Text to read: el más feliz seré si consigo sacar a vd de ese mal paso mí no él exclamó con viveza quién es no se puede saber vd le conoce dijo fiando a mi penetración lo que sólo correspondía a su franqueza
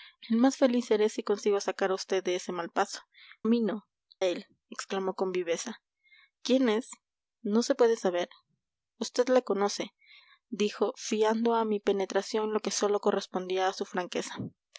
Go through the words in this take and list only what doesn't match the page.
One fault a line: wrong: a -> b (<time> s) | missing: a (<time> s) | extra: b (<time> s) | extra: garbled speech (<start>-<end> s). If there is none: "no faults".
no faults